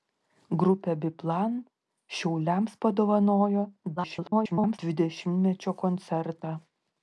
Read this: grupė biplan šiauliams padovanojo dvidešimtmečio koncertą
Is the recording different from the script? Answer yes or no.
yes